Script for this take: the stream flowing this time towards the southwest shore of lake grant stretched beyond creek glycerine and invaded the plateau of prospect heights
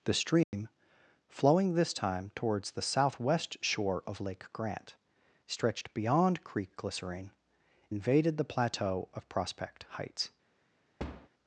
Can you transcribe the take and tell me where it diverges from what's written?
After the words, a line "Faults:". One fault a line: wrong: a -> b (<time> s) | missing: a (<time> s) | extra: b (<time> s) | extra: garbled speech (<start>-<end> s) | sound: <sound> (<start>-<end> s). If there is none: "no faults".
the stream flowing this time towards the southwest shore of lake grant stretched beyond creek glycerine invaded the plateau of prospect heights
Faults:
sound: dropout (0.4-0.5 s)
missing: and (7.3 s)
sound: thud (11.0-11.3 s)